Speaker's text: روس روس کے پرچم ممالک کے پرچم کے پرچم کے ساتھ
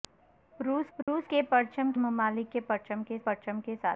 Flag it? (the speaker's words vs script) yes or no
no